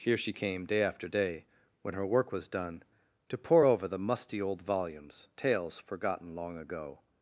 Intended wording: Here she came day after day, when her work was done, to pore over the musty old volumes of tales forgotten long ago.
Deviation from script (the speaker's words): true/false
true